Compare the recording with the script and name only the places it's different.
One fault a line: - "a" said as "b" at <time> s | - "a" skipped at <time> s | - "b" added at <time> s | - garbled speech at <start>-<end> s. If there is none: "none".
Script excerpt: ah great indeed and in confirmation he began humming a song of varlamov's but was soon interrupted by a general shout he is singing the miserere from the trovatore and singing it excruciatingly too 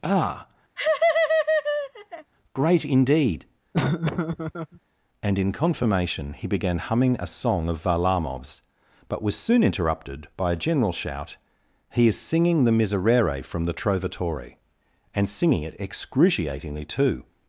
none